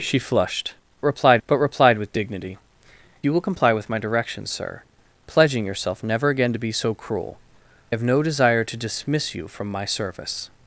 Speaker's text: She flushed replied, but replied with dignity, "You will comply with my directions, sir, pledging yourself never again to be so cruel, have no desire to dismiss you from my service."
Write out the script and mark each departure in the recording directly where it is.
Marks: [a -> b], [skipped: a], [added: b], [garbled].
She flushed replied, but replied with dignity, "You will comply with my directions, sir, pledging yourself never again to be so cruel, have no desire to dismiss you from my service."